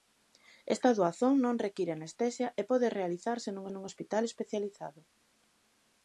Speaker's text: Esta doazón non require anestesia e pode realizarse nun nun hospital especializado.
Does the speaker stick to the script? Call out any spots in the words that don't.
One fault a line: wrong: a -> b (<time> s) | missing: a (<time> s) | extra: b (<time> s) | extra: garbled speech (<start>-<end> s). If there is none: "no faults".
no faults